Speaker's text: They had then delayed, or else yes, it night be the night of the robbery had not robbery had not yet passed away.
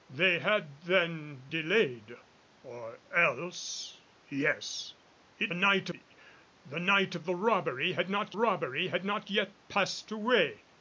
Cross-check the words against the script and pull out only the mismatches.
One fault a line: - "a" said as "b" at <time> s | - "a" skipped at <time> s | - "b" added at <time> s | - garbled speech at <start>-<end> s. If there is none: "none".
none